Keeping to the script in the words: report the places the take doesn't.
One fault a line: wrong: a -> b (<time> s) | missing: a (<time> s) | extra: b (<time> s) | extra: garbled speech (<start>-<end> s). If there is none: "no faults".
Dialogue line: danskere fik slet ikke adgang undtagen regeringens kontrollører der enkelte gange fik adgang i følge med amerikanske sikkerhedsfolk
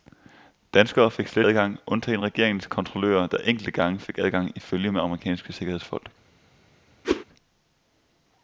missing: ikke (1.5 s)